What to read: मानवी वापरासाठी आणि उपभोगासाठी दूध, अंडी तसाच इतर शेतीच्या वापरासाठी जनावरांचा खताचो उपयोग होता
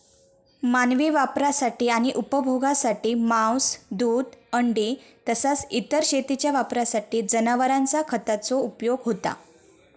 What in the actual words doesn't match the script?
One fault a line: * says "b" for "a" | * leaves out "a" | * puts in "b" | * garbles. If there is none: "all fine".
* puts in "मांस"